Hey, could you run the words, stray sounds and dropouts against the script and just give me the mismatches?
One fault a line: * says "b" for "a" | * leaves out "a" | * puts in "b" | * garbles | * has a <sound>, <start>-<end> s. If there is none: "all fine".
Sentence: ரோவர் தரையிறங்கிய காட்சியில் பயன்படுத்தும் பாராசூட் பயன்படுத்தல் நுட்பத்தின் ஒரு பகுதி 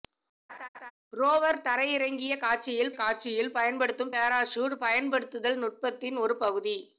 * has a laugh, 0.5-0.9 s
* puts in "காட்சியில்"